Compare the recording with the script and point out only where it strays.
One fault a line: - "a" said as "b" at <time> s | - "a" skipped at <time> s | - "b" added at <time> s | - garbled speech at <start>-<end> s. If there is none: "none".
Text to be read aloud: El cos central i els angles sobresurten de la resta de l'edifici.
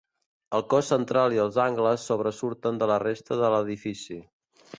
none